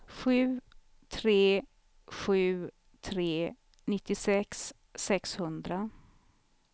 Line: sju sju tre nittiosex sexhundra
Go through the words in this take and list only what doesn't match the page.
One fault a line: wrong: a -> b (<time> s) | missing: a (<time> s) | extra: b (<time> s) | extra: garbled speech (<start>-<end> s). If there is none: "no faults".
extra: tre (1.1 s)